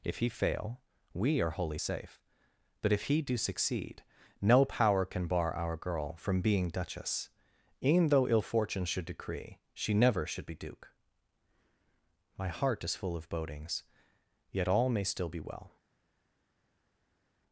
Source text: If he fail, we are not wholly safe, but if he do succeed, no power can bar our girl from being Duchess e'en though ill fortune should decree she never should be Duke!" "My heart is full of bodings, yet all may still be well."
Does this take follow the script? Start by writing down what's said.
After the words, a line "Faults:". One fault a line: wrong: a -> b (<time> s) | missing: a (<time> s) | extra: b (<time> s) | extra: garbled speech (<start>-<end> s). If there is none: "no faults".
If he fail, we are wholly safe, but if he do succeed, no power can bar our girl from being Duchess e'en though ill fortune should decree she never should be Duke!" "My heart is full of bodings, yet all may still be well."
Faults:
missing: not (1.5 s)